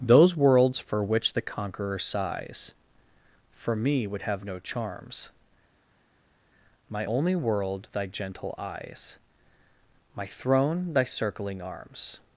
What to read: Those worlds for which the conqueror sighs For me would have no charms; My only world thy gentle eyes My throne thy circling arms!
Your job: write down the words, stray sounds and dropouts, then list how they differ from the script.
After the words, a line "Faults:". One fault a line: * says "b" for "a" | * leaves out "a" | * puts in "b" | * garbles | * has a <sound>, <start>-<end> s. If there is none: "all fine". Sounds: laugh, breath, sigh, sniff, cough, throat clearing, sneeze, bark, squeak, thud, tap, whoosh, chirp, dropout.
Those worlds for which the conqueror sighs For me would have no charms; My only world thy gentle eyes My throne thy circling arms!
Faults:
all fine